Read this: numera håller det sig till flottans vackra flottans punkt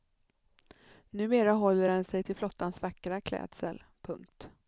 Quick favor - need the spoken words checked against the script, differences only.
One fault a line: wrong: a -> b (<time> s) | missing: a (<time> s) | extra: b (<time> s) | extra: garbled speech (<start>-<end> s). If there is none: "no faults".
wrong: det -> den (1.9 s)
wrong: flottans -> klädsel (3.2 s)